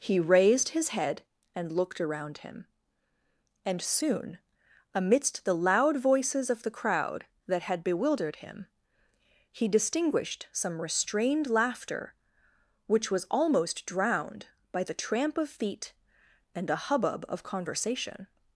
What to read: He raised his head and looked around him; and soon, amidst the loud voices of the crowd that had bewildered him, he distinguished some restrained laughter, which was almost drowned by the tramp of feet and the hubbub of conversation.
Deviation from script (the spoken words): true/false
true